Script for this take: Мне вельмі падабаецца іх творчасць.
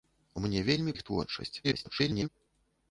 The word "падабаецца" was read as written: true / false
false